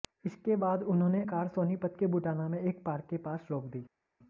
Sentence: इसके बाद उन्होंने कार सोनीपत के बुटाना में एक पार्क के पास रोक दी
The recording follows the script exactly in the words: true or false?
true